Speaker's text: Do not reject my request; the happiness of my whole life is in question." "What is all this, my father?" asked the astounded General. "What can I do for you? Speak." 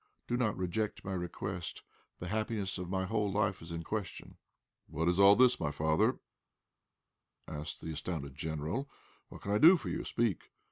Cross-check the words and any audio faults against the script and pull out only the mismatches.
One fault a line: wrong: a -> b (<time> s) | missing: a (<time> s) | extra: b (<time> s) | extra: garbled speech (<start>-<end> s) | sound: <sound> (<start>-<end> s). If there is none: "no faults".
no faults